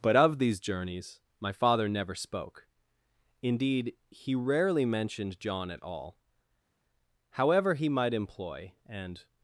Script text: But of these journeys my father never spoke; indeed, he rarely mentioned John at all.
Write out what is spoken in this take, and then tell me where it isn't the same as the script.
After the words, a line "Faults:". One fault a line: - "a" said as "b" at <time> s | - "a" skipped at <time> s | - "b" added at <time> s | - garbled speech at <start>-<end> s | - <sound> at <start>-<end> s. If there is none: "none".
But of these journeys my father never spoke; indeed, he rarely mentioned John at all. However he might employ and
Faults:
- "However he might employ and" added at 7.3 s